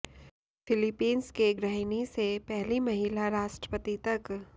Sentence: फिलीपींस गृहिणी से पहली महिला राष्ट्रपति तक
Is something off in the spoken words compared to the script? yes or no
yes